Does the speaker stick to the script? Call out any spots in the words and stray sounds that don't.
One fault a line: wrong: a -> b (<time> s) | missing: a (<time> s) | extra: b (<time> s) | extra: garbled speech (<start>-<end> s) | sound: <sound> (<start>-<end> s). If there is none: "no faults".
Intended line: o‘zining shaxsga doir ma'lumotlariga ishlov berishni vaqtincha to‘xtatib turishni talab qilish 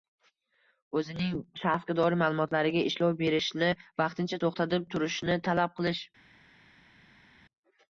no faults